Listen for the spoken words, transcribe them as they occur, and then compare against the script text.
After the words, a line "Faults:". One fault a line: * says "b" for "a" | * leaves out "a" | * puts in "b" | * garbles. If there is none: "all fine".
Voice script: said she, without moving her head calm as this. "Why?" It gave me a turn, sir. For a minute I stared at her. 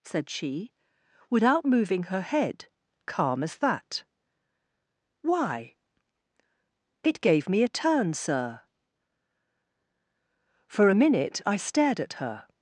said she, without moving her head calm as that. "Why?" It gave me a turn, sir. For a minute I stared at her.
Faults:
* says "that" for "this"